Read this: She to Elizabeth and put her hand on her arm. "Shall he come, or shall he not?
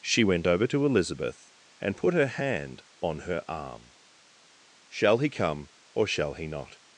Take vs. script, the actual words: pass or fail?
fail